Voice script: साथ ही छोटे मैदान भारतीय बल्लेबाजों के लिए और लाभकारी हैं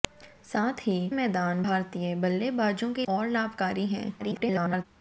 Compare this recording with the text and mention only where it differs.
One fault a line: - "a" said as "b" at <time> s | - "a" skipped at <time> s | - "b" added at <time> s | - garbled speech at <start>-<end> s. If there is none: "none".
- "छोटे" skipped at 0.9 s
- "लिए" skipped at 3.0 s
- garbled speech at 4.2-4.9 s